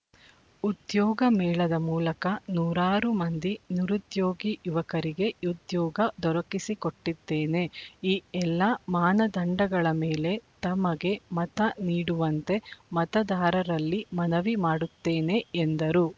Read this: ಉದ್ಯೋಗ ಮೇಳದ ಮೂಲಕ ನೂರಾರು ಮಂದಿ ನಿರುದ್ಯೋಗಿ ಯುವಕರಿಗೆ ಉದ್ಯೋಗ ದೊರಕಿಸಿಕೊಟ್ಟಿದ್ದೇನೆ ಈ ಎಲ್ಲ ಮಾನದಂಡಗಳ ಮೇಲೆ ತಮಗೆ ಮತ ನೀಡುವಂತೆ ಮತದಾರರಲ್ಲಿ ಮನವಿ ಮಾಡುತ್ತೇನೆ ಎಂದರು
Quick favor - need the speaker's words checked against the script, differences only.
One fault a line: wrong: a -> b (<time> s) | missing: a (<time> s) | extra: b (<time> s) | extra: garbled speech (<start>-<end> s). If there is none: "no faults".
no faults